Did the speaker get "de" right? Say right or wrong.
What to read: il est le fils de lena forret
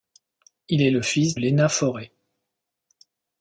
wrong